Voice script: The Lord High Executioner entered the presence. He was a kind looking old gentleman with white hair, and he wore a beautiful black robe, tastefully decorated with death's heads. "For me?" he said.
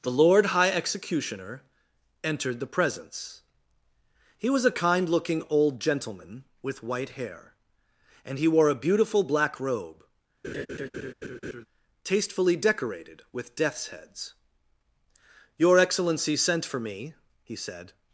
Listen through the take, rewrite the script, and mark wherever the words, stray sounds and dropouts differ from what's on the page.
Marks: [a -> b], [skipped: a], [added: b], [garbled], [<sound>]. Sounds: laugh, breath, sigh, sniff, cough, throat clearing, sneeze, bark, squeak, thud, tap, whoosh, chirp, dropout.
The Lord High Executioner entered the presence. He was a kind looking old gentleman with white hair, and he wore a beautiful black robe, [laugh] tastefully decorated with death's heads. [added: Your Excellency sent] "For me?" he said.